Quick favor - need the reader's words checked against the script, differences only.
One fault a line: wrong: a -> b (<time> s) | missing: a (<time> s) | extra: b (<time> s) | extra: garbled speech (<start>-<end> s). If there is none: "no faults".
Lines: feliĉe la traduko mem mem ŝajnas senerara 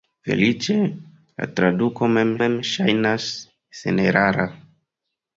no faults